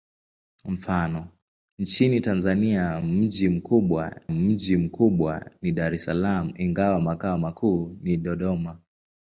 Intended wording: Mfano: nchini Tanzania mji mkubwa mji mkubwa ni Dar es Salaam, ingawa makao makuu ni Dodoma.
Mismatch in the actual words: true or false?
false